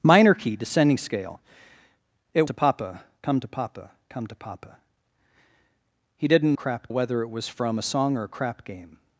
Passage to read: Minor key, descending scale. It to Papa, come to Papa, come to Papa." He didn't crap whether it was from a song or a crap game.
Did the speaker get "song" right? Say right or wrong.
right